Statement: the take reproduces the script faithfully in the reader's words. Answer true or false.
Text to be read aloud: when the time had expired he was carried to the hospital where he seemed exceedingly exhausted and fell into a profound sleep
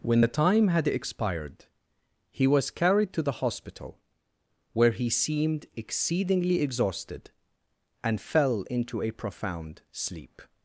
true